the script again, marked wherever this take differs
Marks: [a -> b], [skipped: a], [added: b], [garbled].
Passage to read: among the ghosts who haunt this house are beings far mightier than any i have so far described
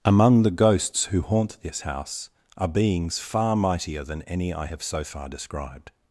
among the ghosts who haunt this house are beings far mightier than any i have so far described